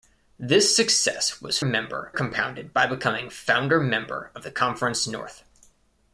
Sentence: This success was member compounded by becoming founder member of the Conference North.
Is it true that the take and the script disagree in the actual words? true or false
false